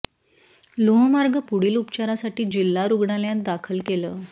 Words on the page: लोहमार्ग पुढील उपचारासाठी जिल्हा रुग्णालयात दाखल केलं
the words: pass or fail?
pass